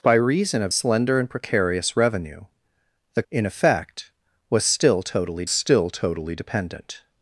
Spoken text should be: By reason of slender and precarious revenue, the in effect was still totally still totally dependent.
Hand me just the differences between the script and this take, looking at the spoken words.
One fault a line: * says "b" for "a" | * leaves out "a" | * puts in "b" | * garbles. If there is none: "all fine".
all fine